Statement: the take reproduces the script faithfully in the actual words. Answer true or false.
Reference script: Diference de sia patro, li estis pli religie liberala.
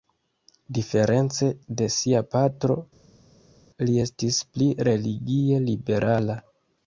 true